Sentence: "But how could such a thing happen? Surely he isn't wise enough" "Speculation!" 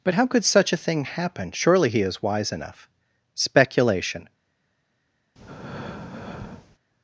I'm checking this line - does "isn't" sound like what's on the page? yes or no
no